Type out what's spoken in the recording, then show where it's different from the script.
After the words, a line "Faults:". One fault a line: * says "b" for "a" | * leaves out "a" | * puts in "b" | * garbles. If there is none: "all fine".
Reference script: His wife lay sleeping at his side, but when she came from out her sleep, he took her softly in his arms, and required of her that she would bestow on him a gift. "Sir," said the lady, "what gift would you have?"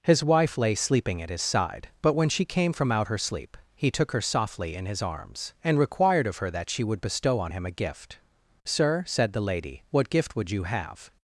His wife lay sleeping at his side, but when she came from out her sleep, he took her softly in his arms, and required of her that she would bestow on him a gift. "Sir," said the lady, "what gift would you have?"
Faults:
all fine